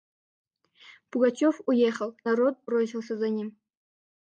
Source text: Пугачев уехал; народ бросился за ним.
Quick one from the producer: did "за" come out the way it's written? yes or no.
yes